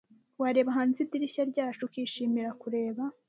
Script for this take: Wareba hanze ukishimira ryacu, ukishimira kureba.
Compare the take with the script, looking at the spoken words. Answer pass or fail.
fail